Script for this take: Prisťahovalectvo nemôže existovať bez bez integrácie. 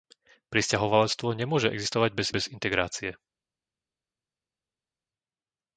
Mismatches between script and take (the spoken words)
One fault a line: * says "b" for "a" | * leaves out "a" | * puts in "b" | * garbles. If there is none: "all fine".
all fine